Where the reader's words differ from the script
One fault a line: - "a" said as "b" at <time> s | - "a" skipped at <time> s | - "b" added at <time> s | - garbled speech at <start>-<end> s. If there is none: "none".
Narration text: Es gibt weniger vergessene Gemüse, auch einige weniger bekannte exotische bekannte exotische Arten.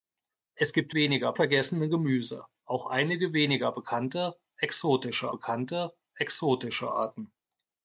none